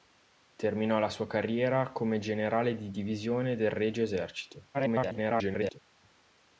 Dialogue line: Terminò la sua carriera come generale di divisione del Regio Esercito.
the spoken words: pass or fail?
fail